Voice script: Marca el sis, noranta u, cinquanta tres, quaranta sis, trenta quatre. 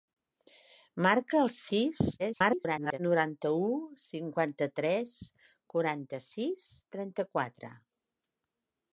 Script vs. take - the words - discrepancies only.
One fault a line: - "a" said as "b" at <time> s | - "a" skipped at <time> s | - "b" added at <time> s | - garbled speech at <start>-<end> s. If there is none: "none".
- garbled speech at 2.2-3.0 s